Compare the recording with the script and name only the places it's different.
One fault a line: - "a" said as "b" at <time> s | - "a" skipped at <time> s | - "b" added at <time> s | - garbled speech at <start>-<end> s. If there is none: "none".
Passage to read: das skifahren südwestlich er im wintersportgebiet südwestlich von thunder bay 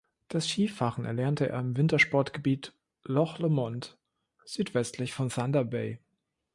- "südwestlich" said as "erlernte" at 1.1 s
- "loch lomond" added at 3.0 s